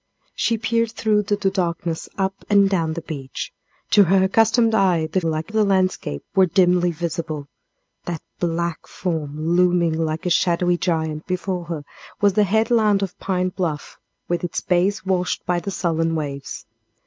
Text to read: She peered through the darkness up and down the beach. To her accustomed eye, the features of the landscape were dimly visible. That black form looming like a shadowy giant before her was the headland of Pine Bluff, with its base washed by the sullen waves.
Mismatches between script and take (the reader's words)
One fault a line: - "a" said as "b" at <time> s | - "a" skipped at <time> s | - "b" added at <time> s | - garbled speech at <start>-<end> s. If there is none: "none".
- "the" added at 1.3 s
- "features" said as "like" at 5.2 s